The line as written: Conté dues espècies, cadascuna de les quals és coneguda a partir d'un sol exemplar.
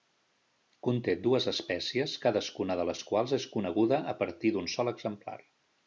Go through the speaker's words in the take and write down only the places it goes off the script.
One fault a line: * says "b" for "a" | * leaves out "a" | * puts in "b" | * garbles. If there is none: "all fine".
all fine